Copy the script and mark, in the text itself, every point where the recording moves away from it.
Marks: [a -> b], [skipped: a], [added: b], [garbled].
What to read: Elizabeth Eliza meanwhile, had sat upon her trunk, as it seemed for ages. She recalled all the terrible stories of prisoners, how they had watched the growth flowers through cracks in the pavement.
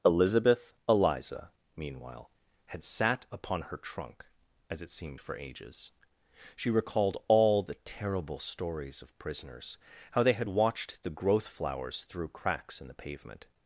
Elizabeth Eliza meanwhile, had sat upon her trunk, as it seemed for ages. She recalled all the terrible stories of prisoners, how they had watched the growth flowers through cracks in the pavement.